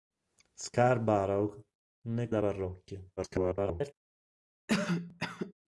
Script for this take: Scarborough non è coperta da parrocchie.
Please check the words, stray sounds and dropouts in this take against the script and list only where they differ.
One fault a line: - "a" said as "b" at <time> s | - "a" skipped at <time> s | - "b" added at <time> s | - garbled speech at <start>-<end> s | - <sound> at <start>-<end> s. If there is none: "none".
- "coperta" skipped at 2.3 s
- garbled speech at 3.2-3.9 s
- cough at 4.7-5.5 s